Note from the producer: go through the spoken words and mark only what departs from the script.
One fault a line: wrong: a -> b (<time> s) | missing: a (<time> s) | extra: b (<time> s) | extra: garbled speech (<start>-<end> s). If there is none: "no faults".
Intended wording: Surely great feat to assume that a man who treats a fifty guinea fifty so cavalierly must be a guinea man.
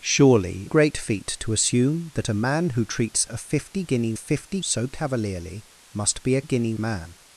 no faults